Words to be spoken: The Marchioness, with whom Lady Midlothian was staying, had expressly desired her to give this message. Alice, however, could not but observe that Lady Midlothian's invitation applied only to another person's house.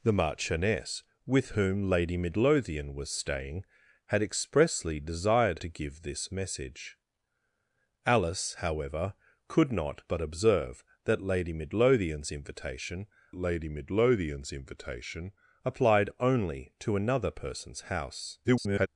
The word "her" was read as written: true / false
false